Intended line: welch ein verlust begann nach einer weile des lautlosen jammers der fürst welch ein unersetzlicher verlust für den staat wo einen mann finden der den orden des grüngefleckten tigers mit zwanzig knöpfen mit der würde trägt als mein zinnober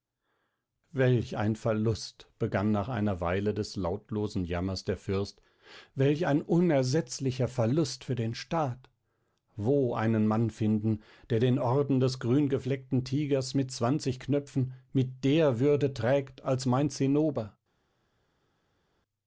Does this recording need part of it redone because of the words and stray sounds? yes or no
no